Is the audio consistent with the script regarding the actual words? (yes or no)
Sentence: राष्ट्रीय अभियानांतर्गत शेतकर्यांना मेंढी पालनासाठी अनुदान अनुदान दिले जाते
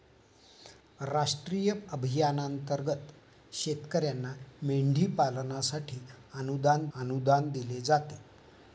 yes